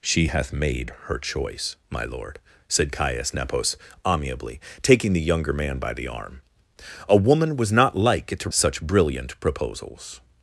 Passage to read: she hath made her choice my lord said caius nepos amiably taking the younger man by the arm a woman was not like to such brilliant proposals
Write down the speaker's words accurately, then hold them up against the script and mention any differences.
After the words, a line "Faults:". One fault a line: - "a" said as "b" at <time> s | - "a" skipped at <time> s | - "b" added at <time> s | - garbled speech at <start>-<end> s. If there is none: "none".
she hath made her choice my lord said caius nepos amiably taking the younger man by the arm a woman was not like to such brilliant proposals
Faults:
none